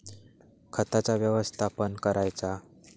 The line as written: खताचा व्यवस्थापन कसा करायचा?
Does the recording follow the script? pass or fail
fail